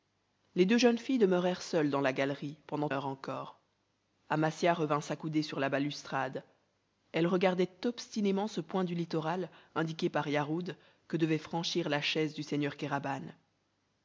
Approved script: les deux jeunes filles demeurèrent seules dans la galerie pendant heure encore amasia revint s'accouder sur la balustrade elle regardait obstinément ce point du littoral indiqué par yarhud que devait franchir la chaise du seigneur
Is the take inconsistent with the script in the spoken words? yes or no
no